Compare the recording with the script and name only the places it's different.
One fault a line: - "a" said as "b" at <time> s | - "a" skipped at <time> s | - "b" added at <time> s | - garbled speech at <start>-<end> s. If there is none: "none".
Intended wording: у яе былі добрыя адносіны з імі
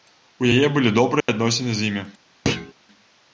none